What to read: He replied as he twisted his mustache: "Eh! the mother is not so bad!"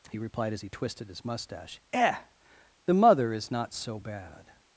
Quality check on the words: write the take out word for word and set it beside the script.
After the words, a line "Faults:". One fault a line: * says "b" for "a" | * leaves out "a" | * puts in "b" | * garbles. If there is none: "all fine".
He replied as he twisted his mustache: "Eh! the mother is not so bad!"
Faults:
all fine